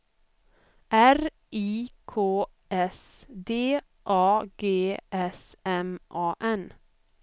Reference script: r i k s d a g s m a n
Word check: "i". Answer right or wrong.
right